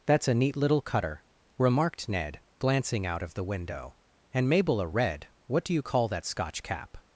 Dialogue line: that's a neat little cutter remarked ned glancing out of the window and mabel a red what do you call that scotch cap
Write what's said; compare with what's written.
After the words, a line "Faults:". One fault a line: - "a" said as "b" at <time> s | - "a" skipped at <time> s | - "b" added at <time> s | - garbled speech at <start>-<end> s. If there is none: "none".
that's a neat little cutter remarked ned glancing out of the window and mabel a red what do you call that scotch cap
Faults:
none